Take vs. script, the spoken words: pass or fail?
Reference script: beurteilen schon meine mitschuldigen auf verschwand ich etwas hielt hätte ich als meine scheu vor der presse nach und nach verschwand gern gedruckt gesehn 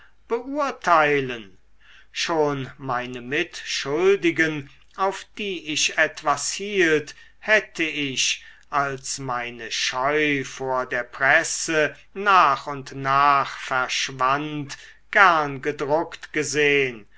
fail